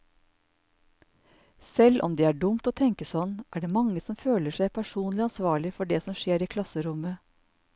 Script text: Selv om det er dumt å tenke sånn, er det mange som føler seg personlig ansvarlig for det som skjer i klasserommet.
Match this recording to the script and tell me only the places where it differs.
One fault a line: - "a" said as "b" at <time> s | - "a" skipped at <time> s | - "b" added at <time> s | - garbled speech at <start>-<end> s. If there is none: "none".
none